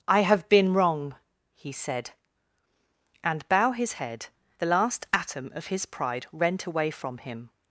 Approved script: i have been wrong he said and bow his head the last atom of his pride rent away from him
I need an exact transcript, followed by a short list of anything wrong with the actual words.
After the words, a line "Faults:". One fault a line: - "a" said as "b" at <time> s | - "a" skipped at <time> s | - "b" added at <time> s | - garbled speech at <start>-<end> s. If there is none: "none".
i have been wrong he said and bow his head the last atom of his pride rent away from him
Faults:
none